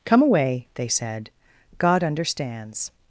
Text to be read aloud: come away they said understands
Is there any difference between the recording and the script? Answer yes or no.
yes